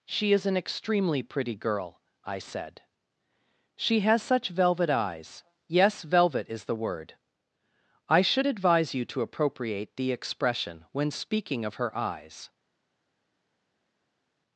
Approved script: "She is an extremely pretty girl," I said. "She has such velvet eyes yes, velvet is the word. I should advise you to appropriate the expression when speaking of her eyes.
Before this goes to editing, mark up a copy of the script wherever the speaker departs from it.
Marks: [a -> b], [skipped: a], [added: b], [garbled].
"She is an extremely pretty girl," I said. "She has such velvet eyes yes, velvet is the word. I should advise you to appropriate the expression when speaking of her eyes.